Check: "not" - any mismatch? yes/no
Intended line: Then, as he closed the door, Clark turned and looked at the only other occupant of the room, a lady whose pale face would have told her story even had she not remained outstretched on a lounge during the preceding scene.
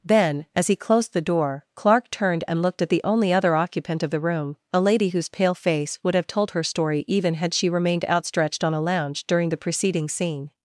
yes